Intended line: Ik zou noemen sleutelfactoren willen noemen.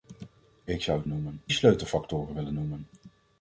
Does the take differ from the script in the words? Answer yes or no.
no